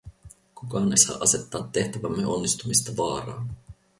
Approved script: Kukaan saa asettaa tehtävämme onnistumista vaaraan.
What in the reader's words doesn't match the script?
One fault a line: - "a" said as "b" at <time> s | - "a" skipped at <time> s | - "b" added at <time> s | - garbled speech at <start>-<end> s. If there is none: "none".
none